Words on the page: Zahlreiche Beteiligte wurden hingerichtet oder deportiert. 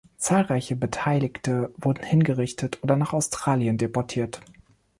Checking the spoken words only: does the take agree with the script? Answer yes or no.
no